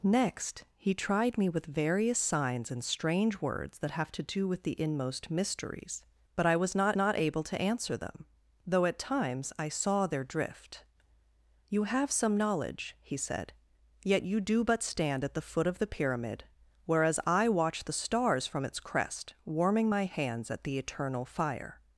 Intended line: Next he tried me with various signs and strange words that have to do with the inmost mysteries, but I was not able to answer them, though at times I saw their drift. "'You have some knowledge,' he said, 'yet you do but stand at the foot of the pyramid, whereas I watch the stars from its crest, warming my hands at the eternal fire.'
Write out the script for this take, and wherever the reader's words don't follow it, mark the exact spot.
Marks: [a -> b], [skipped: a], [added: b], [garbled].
Next he tried me with various signs and strange words that have to do with the inmost mysteries, but I was not [added: not] able to answer them, though at times I saw their drift. "'You have some knowledge,' he said, 'yet you do but stand at the foot of the pyramid, whereas I watch the stars from its crest, warming my hands at the eternal fire.'